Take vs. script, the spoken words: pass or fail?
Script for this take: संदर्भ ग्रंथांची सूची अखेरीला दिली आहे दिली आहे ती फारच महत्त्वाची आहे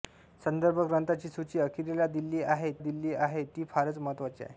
pass